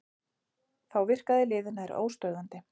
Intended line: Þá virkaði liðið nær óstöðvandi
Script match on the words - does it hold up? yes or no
yes